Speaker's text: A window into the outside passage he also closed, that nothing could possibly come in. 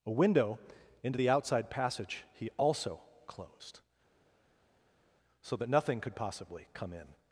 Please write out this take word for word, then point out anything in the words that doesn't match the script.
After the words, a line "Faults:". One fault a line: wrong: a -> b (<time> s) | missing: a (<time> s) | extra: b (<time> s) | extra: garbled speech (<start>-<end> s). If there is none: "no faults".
A window into the outside passage he also closed, so that nothing could possibly come in.
Faults:
extra: so (5.4 s)